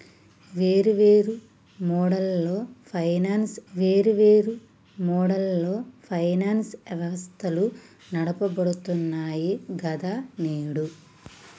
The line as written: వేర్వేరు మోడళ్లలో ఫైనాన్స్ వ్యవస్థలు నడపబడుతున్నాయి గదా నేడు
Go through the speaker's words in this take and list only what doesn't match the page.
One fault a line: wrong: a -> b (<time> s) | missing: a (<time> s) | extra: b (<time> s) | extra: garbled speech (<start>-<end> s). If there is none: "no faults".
extra: వేర్వేరు మోడళ్లలో ఫైనాన్స్ (3.7 s)